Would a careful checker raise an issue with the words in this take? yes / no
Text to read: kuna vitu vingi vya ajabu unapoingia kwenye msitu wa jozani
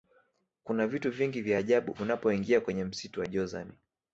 no